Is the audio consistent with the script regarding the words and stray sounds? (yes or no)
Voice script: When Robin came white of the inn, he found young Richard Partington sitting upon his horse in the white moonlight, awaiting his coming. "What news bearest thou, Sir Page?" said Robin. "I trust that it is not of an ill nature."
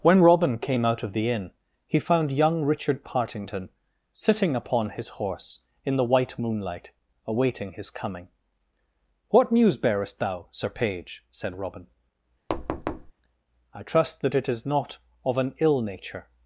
no